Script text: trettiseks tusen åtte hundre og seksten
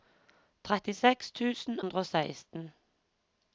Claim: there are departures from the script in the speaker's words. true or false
true